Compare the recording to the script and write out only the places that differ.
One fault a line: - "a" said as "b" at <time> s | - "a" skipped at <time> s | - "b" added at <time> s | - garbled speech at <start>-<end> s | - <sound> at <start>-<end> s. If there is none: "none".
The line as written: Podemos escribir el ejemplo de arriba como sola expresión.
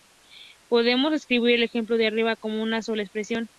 - "una" added at 2.6 s